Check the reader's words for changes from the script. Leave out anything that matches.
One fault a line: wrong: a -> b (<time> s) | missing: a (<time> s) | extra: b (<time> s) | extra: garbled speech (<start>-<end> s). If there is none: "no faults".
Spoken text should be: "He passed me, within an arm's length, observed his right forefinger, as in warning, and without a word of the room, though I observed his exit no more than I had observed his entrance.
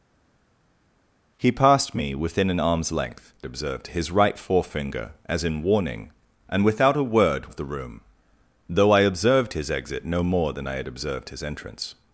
no faults